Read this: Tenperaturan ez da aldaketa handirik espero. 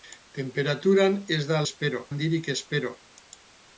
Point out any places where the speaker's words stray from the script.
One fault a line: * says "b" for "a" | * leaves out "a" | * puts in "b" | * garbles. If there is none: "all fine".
* says "espero" for "aldaketa"